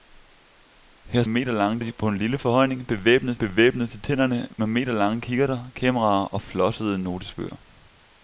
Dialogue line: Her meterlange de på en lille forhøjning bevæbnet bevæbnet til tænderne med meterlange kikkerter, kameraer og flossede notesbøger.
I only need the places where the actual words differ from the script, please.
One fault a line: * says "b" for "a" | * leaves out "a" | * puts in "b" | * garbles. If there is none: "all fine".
all fine